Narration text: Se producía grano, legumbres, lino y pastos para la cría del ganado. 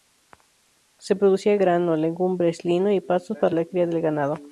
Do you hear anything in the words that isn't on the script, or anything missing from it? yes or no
no